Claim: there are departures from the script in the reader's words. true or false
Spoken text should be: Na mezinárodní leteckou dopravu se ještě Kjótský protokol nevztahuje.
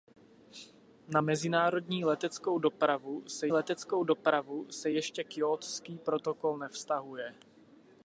true